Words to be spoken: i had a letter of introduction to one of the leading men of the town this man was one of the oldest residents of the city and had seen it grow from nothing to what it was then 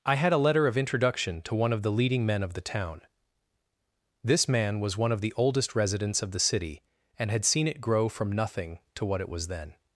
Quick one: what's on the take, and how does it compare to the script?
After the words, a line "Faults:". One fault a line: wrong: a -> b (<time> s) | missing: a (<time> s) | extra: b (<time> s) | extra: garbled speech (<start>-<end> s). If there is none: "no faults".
i had a letter of introduction to one of the leading men of the town this man was one of the oldest residents of the city and had seen it grow from nothing to what it was then
Faults:
no faults